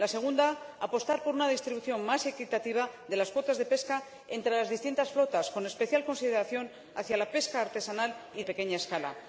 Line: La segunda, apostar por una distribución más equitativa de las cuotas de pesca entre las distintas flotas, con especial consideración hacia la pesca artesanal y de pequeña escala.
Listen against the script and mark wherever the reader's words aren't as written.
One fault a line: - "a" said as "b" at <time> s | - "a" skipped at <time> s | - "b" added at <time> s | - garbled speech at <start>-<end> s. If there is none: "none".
- "de" skipped at 8.4 s